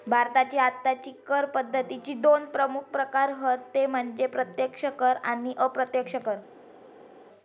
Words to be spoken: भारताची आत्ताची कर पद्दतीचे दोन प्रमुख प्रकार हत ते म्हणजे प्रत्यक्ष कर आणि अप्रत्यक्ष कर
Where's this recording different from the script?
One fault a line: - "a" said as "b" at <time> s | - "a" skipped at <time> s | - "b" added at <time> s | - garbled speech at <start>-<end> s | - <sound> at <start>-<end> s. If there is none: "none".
none